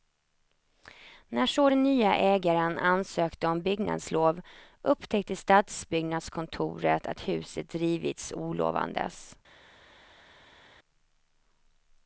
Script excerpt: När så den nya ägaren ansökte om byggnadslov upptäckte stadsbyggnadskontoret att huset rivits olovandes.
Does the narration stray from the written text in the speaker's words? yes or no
no